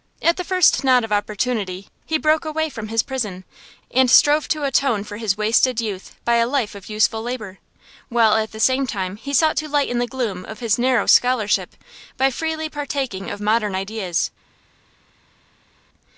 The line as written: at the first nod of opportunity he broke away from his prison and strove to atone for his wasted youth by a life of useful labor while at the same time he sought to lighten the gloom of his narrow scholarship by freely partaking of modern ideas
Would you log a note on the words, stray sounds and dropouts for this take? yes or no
no